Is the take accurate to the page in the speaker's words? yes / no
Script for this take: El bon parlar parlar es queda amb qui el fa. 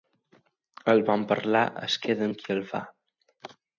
no